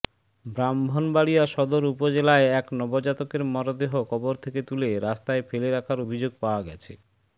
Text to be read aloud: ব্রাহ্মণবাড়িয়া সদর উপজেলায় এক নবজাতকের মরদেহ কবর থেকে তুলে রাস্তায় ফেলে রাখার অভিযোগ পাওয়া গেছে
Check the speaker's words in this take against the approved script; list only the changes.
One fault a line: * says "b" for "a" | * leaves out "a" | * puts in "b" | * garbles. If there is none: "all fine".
all fine